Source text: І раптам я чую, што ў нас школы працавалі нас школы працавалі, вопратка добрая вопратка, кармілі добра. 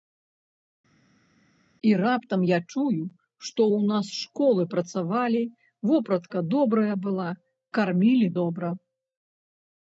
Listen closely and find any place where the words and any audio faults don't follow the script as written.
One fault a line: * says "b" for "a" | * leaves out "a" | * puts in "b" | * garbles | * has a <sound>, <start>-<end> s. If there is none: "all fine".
* leaves out "нас школы працавалі"
* says "была" for "вопратка"